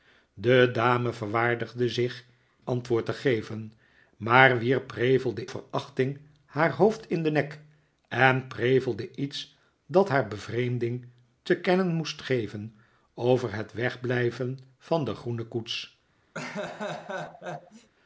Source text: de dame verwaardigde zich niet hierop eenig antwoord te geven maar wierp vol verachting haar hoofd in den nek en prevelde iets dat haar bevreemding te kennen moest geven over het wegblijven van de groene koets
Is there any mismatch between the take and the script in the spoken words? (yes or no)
yes